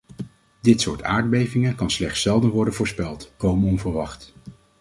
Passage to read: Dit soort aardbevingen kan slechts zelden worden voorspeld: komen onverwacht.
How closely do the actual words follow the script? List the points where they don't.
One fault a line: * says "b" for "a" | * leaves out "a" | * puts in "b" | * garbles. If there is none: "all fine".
all fine